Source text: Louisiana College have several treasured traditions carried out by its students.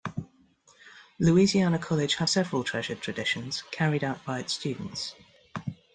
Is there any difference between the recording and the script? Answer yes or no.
no